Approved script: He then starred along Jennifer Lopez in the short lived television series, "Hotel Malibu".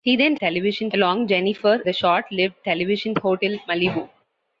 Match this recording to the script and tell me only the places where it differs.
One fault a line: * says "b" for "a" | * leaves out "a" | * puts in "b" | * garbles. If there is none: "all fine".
* says "television" for "starred"
* leaves out "Lopez in"
* leaves out "series"